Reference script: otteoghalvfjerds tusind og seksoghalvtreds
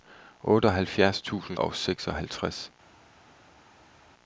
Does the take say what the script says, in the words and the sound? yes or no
yes